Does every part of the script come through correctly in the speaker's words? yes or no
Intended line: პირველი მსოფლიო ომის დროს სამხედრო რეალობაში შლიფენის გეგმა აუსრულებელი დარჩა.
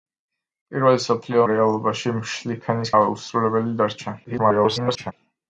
no